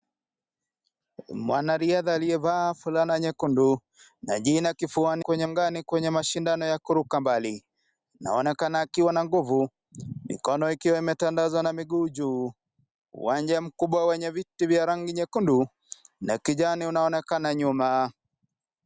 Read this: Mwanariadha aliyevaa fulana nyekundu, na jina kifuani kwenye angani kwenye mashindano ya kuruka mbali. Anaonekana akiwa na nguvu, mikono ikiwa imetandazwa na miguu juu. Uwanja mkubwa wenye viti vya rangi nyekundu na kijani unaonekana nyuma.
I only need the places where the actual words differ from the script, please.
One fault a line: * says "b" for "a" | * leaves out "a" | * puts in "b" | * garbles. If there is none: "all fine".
all fine